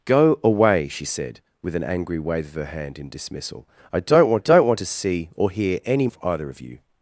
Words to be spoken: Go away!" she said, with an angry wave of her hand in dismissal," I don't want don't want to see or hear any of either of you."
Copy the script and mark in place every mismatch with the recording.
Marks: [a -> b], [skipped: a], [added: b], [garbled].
Go away!" she said, with an angry wave of her hand in dismissal," I don't want don't want to see or hear any of either of you."